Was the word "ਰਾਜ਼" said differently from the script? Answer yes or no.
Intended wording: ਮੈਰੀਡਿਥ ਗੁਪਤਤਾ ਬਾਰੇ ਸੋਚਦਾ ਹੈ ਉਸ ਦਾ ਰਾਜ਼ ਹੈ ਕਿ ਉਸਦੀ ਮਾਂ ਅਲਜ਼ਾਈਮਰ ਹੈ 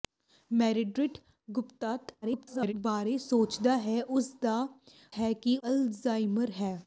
yes